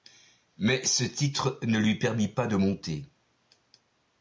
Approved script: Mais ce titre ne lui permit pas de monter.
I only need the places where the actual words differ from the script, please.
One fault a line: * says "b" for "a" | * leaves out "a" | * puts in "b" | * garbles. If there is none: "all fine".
all fine